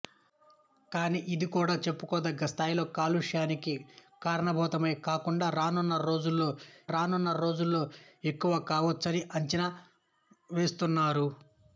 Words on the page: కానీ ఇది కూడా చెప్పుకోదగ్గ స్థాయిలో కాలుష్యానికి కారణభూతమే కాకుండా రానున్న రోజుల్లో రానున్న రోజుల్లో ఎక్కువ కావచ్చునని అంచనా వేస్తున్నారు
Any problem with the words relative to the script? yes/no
no